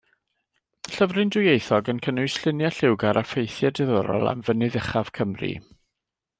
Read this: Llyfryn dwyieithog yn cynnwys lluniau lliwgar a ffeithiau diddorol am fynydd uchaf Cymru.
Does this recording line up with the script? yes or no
yes